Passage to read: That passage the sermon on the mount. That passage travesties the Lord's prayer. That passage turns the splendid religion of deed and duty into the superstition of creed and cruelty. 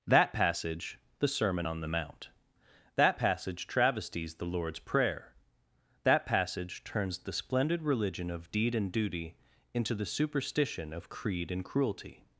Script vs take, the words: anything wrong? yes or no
no